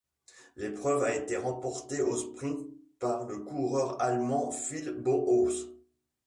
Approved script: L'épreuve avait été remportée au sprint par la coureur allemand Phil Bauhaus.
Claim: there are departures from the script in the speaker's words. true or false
true